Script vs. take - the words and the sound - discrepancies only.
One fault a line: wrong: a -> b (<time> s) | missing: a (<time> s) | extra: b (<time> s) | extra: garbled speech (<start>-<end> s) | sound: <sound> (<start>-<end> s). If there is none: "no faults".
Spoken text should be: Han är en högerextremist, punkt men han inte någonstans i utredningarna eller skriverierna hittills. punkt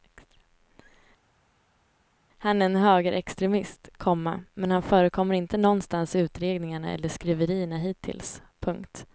wrong: punkt -> komma (4.0 s)
extra: förekommer (4.8 s)